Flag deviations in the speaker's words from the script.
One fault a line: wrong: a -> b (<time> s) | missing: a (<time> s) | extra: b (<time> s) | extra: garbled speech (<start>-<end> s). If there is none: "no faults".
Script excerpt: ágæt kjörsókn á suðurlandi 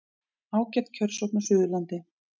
no faults